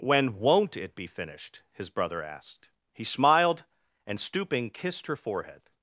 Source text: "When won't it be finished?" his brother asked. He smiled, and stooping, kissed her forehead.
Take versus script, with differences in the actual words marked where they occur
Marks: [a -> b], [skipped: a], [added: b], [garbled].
"When won't it be finished?" his brother asked. He smiled, and stooping, kissed her forehead.